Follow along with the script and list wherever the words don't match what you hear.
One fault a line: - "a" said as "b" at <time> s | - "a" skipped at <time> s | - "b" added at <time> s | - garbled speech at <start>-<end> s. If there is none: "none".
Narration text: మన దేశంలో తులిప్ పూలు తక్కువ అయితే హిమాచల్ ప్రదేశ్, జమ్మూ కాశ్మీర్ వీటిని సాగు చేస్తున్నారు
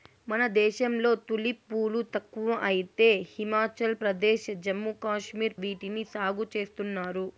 none